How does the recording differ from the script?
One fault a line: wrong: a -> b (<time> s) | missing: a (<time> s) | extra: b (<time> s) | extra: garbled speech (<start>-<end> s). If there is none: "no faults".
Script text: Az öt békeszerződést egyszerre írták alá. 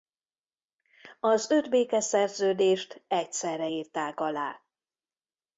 no faults